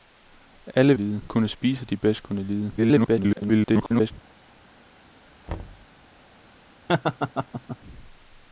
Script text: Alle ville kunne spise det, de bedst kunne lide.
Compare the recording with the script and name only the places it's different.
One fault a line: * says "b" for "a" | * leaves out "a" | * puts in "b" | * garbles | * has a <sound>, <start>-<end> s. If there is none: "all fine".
* says "lide" for "ville"
* leaves out "det"
* garbles
* has a thud, 5.5-5.9 s
* has a laugh, 6.9-7.8 s